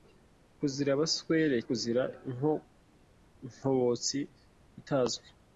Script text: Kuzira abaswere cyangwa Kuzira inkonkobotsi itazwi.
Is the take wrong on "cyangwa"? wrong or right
wrong